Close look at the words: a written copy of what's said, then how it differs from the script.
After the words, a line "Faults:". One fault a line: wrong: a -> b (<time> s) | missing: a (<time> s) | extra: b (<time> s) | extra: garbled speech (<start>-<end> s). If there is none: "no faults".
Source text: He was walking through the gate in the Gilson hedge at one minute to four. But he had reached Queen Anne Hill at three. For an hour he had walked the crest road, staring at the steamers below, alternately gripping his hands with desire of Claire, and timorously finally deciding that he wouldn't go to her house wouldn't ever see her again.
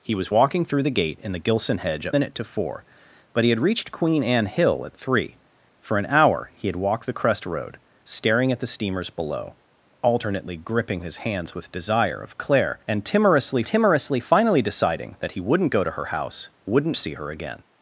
He was walking through the gate in the Gilson hedge at minute to four. But he had reached Queen Anne Hill at three. For an hour he had walked the crest road, staring at the steamers below, alternately gripping his hands with desire of Claire, and timorously timorously finally deciding that he wouldn't go to her house wouldn't see her again.
Faults:
missing: one (2.1 s)
extra: timorously (13.6 s)
missing: ever (17.0 s)